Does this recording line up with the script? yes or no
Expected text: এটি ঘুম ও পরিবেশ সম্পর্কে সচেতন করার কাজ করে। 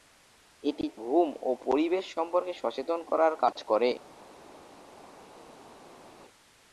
yes